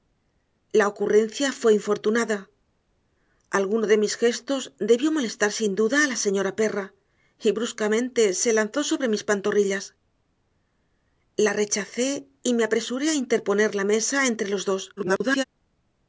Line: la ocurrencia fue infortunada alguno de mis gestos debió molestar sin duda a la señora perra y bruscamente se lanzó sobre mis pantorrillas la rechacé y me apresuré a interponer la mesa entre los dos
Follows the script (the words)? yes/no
no